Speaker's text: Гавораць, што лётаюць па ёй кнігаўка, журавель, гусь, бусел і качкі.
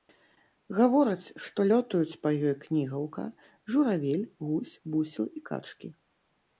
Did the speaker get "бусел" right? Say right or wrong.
right